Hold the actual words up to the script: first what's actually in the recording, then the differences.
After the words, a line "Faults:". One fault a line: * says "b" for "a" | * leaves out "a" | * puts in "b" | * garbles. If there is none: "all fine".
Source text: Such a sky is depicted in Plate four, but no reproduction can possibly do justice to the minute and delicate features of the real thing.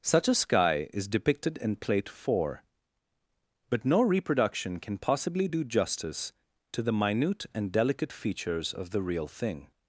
Such a sky is depicted in Plate four, but no reproduction can possibly do justice to the minute and delicate features of the real thing.
Faults:
all fine